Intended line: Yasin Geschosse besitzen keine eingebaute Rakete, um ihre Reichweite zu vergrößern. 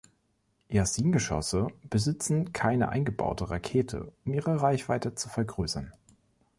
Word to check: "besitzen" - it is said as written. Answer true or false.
true